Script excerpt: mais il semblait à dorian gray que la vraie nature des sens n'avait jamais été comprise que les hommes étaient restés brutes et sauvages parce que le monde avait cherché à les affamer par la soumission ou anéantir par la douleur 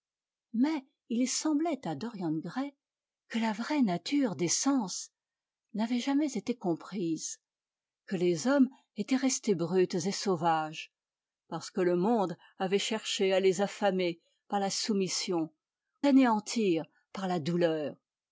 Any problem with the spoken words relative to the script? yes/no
no